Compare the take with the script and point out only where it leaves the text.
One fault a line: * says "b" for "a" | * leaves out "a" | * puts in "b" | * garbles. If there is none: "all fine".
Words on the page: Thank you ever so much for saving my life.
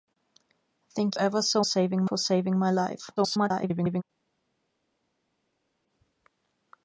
* leaves out "you"
* says "saving" for "much"
* garbles